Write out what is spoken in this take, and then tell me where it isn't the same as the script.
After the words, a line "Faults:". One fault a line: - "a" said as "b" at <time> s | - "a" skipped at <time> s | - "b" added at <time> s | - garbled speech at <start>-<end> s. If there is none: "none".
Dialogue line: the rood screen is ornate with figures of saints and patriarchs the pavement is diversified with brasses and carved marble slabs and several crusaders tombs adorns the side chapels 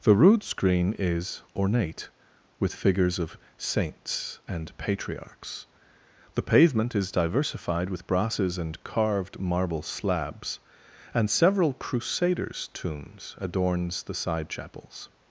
the rood screen is ornate with figures of saints and patriarchs the pavement is diversified with brasses and carved marble slabs and several crusaders tombs adorns the side chapels
Faults:
none